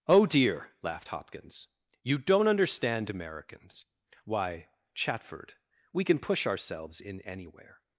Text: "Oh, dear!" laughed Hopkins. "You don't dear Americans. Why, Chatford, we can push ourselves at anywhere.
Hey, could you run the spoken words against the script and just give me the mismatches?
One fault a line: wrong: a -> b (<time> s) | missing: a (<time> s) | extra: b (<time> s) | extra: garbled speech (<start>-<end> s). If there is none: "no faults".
wrong: dear -> understand (2.5 s)
wrong: at -> in (7.0 s)